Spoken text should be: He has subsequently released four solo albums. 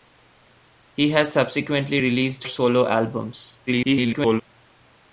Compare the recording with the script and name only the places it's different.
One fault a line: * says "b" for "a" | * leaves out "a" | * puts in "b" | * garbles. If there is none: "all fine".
* leaves out "four"
* garbles